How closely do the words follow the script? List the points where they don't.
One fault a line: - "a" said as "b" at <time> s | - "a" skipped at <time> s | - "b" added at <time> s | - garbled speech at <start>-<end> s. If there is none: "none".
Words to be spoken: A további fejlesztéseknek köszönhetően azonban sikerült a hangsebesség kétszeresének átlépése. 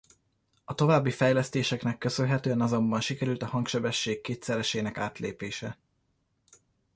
none